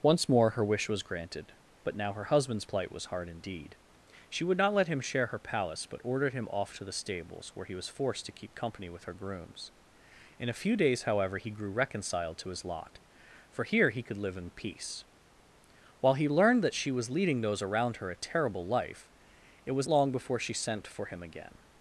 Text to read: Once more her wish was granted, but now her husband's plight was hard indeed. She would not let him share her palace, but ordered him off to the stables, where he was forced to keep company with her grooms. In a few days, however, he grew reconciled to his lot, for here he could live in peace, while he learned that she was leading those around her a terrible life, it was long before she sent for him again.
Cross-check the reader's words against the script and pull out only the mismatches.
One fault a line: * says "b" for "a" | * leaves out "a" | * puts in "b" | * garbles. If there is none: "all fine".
all fine